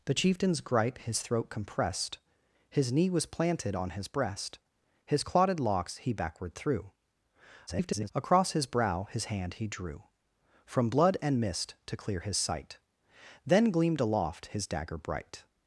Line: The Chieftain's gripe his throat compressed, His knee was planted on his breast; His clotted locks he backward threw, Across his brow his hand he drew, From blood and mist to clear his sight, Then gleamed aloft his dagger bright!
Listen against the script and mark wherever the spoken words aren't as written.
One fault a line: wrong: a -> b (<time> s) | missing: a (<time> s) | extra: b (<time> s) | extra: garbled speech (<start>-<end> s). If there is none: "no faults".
extra: garbled speech (7.7-8.1 s)